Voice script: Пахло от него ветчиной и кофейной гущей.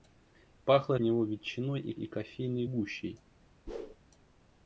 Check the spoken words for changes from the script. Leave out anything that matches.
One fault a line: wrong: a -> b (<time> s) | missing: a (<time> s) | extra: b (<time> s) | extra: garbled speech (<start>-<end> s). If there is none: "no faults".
missing: от (0.9 s)
extra: и (1.9 s)